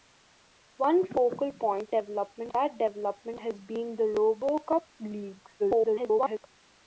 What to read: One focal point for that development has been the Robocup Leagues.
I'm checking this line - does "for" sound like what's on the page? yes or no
no